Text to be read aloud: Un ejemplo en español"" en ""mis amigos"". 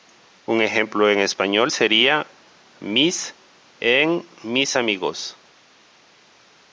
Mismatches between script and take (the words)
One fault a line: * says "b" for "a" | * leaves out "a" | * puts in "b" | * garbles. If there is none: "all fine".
* puts in "sería mis"